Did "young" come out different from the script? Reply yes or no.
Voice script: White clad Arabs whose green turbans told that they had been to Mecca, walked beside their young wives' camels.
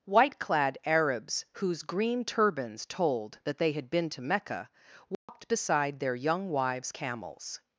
no